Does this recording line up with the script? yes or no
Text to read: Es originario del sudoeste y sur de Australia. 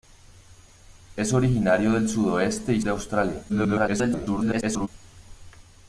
no